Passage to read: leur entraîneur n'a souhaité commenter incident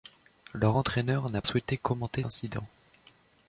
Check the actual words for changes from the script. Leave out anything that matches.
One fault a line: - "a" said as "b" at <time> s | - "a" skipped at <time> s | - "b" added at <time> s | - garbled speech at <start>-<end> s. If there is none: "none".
none